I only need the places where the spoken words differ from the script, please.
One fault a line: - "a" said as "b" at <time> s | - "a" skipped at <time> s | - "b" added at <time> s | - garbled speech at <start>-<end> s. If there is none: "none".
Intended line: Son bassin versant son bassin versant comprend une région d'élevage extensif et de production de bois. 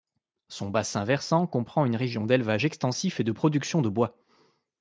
- "son bassin versant" skipped at 1.4 s